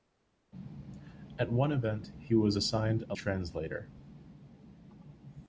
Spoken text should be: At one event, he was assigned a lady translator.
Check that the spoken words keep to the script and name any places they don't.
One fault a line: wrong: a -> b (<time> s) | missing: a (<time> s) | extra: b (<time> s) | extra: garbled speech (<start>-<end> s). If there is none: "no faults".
missing: lady (3.1 s)